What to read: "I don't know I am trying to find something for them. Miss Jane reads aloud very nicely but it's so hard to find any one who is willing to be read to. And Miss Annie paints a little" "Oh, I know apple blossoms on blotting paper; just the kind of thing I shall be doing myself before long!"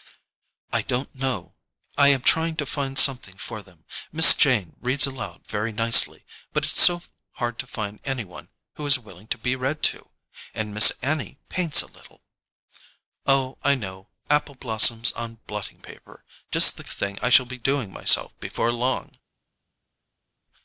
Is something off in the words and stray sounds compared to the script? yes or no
yes